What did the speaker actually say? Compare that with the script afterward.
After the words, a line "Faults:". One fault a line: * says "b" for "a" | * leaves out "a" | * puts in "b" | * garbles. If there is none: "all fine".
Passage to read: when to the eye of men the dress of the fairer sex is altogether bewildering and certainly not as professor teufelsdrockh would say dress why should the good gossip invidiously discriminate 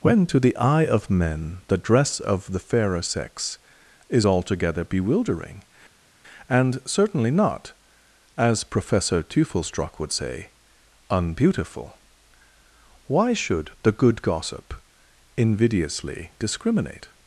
when to the eye of men the dress of the fairer sex is altogether bewildering and certainly not as professor teufelsdrockh would say unbeautiful why should the good gossip invidiously discriminate
Faults:
* says "unbeautiful" for "dress"